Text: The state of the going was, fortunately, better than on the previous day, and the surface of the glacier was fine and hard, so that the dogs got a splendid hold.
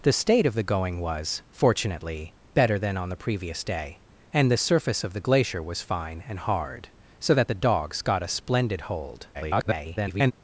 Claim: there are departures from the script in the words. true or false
true